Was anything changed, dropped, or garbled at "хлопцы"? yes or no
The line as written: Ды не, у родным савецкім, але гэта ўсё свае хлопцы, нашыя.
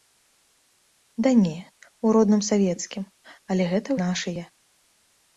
yes